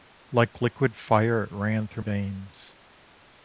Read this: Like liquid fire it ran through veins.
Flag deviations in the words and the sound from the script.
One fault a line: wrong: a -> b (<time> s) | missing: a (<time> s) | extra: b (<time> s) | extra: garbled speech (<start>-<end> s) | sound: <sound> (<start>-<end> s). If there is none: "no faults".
no faults